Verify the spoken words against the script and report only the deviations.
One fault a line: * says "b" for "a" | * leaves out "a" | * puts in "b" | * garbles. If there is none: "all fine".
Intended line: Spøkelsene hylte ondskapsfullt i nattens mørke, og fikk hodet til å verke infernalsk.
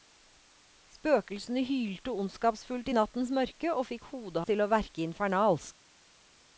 all fine